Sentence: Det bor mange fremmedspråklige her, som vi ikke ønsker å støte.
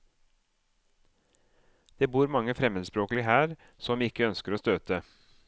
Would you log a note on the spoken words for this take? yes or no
no